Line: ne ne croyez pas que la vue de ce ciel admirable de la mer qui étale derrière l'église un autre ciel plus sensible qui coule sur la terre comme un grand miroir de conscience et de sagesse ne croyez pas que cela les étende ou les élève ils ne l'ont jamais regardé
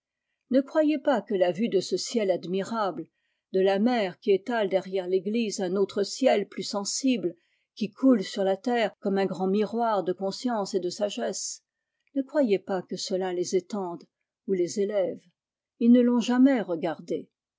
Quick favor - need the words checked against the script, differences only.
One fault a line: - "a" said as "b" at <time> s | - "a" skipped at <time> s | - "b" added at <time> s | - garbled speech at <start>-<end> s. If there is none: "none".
- "ne" skipped at 0.6 s